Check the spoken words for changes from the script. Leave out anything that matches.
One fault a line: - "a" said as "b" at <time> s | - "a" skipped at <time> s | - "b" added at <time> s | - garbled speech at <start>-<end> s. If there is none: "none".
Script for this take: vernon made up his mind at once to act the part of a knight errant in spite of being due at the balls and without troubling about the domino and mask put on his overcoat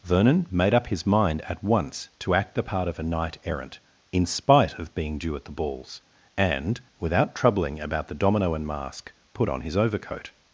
none